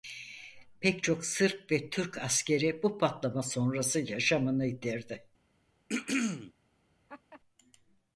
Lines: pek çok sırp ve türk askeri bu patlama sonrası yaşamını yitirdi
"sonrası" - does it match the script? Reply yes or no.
yes